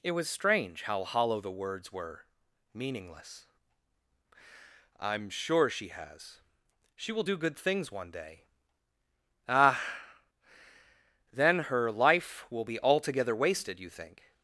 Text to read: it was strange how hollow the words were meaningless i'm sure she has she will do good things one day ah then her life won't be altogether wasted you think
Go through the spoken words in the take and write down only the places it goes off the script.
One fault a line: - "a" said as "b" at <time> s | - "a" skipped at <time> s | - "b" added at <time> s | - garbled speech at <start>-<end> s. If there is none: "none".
- "won't" said as "will" at 12.5 s